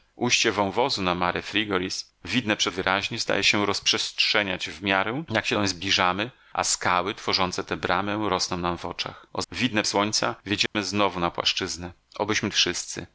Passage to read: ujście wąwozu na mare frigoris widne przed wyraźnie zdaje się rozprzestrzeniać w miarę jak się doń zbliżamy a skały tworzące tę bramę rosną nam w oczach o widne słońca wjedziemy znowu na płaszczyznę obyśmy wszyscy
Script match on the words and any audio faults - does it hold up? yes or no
no